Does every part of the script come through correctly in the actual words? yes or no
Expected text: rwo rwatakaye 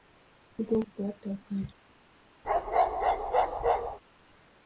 yes